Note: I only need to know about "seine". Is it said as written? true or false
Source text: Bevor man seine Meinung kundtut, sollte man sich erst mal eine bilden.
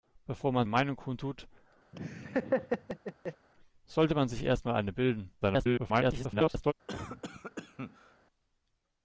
false